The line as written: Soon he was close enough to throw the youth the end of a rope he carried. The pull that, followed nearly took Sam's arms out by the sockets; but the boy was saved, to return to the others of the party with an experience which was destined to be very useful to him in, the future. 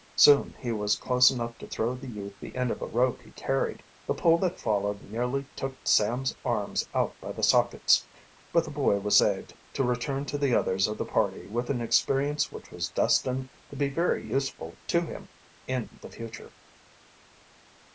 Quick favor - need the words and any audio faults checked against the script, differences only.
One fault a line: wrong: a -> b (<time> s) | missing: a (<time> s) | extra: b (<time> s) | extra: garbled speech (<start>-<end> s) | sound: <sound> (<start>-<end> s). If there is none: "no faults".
no faults